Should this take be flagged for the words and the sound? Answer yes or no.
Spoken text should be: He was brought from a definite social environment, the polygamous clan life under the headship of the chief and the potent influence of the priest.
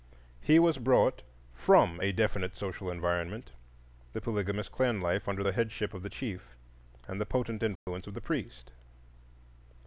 yes